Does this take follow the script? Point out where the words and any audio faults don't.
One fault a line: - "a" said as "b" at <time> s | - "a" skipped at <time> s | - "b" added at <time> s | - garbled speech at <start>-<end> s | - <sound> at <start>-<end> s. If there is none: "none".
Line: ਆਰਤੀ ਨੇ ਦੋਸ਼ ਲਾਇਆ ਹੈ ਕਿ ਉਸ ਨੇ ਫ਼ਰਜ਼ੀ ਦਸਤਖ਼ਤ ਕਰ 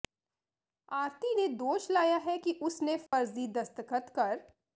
- dropout at 3.1-3.1 s